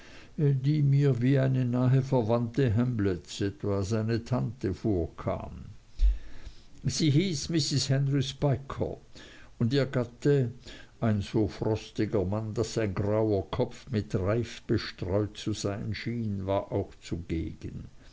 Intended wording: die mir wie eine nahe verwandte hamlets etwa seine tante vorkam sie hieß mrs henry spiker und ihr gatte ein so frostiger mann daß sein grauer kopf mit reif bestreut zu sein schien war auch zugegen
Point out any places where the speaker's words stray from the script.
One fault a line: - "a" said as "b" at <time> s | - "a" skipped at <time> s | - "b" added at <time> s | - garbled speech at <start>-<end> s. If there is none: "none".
none